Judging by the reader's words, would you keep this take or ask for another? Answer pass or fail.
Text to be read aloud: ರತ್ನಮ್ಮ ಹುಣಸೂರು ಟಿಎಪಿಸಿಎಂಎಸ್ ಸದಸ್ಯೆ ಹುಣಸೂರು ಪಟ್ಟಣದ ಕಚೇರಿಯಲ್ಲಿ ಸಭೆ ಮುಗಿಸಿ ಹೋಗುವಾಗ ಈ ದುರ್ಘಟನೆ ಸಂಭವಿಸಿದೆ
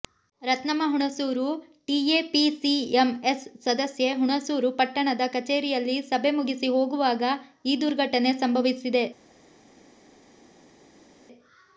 pass